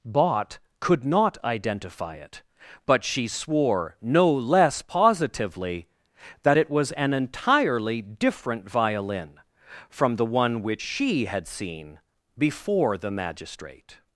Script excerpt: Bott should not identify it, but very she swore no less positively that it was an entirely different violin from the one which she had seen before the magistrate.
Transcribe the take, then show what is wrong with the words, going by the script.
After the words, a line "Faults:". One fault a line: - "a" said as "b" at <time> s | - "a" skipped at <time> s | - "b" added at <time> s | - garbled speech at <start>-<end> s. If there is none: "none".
Bott could not identify it, but she swore no less positively that it was an entirely different violin from the one which she had seen before the magistrate.
Faults:
- "should" said as "could" at 0.8 s
- "very" skipped at 3.0 s